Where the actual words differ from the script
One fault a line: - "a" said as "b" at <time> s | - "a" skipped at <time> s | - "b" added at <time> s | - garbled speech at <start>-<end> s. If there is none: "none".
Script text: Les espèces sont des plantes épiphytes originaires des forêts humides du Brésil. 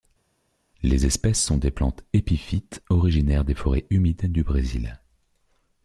none